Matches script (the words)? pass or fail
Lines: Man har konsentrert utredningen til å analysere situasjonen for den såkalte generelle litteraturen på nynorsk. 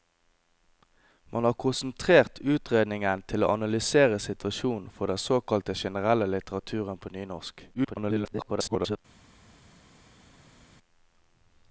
fail